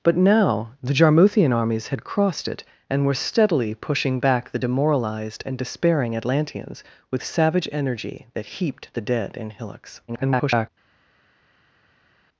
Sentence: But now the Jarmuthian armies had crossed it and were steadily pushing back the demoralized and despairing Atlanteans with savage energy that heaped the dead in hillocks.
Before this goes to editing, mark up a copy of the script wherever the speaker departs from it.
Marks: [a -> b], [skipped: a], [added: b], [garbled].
But now the Jarmuthian armies had crossed it and were steadily pushing back the demoralized and despairing Atlanteans with savage energy that heaped the dead in hillocks. [garbled]